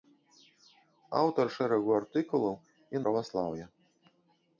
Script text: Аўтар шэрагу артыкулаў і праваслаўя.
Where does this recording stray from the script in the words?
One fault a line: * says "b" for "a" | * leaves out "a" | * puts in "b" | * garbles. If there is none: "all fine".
all fine